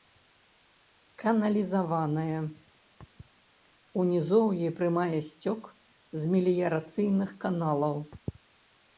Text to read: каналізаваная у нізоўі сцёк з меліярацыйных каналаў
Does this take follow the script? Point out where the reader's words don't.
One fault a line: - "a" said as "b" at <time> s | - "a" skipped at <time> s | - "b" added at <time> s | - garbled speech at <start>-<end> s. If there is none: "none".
- "прымае" added at 4.8 s